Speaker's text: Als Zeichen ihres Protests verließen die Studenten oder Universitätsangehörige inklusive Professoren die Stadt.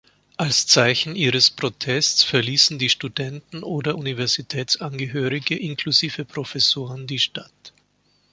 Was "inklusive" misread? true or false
false